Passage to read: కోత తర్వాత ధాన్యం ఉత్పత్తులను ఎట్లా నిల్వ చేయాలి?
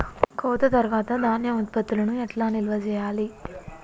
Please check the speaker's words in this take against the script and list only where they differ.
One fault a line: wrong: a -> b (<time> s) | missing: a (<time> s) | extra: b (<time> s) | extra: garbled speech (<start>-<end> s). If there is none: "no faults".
no faults